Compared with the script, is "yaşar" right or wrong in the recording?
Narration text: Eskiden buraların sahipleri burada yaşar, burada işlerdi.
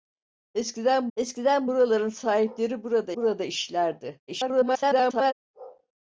wrong